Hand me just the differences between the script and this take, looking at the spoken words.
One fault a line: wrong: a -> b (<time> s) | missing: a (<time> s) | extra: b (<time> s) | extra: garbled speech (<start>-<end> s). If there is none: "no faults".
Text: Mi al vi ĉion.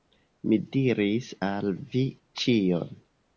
extra: diris (0.8 s)